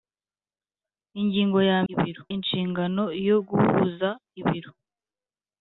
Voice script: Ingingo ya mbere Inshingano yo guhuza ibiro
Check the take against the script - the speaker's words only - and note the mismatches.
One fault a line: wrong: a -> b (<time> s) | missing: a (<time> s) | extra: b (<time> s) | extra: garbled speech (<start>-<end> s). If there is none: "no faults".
wrong: mbere -> ibiro (1.9 s)